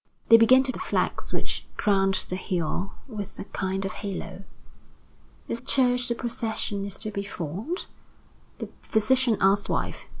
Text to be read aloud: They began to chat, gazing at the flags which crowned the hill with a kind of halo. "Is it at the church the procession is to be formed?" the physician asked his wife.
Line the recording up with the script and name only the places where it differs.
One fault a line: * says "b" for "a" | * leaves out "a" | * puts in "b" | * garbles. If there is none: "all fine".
* leaves out "chat gazing at"
* leaves out "it at the"
* leaves out "his"